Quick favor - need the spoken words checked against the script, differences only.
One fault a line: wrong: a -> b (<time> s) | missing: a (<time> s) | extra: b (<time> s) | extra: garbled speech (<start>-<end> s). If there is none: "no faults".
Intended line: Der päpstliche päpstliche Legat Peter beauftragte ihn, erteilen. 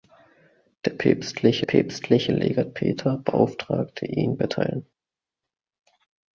no faults